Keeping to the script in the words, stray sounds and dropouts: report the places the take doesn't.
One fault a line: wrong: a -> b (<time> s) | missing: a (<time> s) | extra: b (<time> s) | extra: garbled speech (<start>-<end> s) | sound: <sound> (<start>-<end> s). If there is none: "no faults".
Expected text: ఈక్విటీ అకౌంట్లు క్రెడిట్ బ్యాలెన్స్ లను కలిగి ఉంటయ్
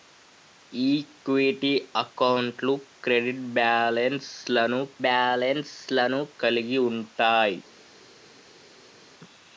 extra: బ్యాలెన్స్ లను (5.0 s)